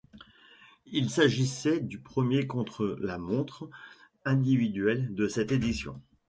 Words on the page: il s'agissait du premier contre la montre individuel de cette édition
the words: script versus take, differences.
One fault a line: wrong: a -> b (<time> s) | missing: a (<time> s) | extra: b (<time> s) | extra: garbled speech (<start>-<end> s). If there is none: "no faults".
no faults